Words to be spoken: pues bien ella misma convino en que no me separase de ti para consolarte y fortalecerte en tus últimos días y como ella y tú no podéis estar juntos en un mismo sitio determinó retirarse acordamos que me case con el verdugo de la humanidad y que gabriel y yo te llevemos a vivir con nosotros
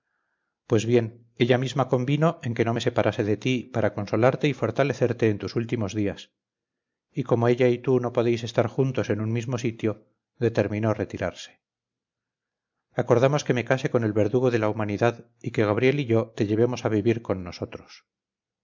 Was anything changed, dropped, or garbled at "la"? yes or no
no